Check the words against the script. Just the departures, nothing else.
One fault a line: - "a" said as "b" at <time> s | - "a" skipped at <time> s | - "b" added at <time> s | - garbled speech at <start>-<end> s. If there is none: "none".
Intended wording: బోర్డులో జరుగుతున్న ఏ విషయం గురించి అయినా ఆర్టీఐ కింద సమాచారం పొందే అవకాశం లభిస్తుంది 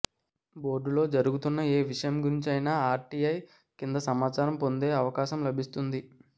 none